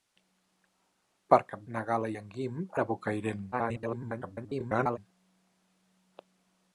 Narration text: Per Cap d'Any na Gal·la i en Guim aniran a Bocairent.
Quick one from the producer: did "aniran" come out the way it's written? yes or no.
no